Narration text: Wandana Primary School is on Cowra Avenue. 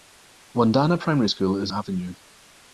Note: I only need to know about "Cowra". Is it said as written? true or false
false